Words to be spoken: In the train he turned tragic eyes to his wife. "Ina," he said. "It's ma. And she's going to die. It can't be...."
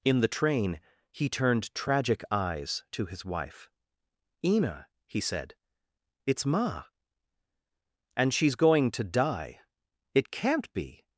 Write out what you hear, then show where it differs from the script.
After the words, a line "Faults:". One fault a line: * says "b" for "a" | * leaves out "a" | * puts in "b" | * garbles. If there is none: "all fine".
In the train he turned tragic eyes to his wife. "Ina," he said. "It's ma. And she's going to die. It can't be...."
Faults:
all fine